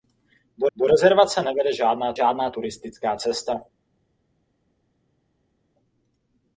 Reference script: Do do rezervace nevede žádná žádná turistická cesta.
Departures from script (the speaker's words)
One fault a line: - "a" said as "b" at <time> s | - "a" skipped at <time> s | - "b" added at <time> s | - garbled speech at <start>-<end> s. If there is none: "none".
none